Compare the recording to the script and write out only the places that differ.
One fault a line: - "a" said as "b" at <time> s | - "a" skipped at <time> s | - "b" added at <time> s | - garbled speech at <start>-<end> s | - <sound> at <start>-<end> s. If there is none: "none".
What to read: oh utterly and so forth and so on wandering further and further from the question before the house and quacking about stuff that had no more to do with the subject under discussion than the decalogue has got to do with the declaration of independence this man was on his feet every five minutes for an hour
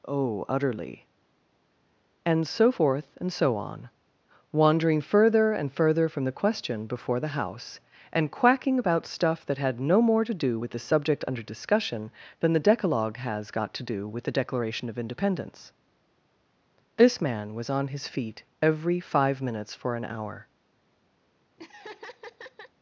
- laugh at 21.6-22.7 s